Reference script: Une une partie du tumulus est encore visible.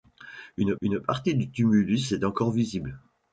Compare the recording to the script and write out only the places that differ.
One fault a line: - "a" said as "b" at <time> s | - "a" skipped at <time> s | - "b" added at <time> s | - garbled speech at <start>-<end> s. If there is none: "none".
none